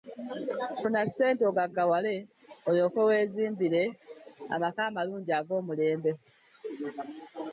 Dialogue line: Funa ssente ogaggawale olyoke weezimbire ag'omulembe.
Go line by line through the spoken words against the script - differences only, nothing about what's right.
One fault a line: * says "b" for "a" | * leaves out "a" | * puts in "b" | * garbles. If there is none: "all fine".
* puts in "amaka amalungi"